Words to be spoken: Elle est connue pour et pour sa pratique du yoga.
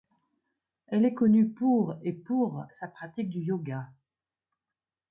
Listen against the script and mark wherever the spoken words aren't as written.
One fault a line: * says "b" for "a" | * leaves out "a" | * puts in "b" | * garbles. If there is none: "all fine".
all fine